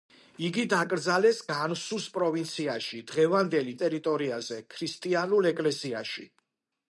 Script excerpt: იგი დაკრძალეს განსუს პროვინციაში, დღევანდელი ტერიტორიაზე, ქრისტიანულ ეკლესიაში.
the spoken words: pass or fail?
pass